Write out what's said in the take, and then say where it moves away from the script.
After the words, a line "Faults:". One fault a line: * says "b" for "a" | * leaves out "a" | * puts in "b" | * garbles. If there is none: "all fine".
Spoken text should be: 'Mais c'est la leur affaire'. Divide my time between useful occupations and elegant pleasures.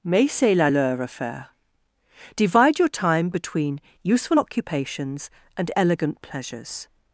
'Mais c'est la leur affaire'. Divide your time between useful occupations and elegant pleasures.
Faults:
* says "your" for "my"